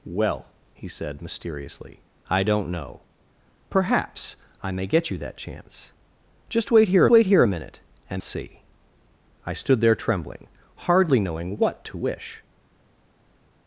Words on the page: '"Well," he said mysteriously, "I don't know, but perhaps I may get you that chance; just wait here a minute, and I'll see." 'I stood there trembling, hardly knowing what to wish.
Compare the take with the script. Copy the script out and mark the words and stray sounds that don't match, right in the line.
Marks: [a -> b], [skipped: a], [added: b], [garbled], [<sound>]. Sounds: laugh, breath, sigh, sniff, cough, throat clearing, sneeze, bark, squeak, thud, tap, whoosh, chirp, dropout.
'"Well," he said mysteriously, "I don't know, [skipped: but] perhaps I may get you that chance; just wait here [added: wait here] a minute, and [skipped: I'll] see." 'I stood there trembling, hardly knowing what to wish.